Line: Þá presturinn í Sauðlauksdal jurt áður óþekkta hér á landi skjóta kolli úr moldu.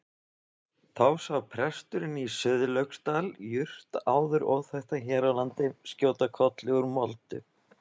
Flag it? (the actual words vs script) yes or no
yes